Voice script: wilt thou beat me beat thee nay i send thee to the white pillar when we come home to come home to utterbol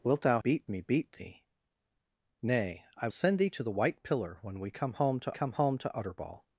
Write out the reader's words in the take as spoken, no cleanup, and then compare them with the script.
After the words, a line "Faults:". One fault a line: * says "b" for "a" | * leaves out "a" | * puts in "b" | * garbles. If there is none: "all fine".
wilt thou beat me beat thee nay i send thee to the white pillar when we come home to come home to utterbol
Faults:
all fine